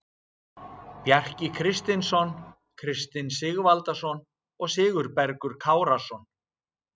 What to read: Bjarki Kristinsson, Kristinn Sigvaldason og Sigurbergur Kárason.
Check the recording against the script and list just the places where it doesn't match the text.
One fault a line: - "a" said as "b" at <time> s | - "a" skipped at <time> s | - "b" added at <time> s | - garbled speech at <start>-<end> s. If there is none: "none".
none